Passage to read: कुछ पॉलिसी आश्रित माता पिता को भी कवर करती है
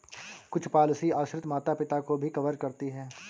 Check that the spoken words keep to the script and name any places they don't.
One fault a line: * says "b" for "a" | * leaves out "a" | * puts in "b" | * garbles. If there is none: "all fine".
all fine